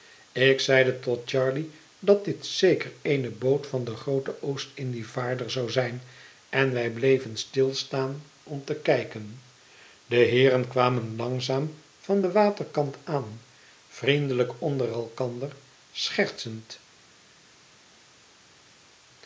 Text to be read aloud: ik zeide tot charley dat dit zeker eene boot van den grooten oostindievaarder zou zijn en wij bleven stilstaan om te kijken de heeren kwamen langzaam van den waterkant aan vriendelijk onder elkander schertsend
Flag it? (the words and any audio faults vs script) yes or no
no